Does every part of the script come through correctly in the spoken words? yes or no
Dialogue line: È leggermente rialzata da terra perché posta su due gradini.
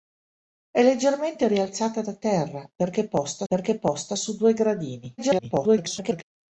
no